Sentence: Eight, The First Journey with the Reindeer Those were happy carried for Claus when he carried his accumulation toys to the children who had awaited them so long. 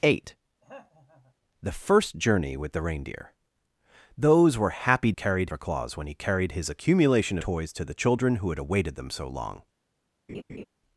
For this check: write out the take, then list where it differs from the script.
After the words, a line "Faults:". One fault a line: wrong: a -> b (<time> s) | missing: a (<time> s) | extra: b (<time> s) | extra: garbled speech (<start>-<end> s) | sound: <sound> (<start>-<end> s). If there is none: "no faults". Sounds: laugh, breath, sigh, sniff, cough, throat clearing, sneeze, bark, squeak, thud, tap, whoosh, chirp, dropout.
Eight, The First Journey with the Reindeer Those were happy carried for Claus when he carried his accumulation toys to the children who had awaited them so long.
Faults:
sound: throat clearing (0.6-1.3 s)
sound: laugh (10.3-10.6 s)